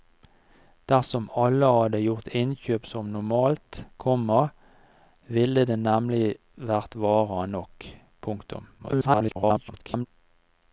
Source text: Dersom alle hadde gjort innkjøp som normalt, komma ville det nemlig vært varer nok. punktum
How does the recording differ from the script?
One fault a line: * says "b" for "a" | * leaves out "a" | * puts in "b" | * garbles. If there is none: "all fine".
* garbles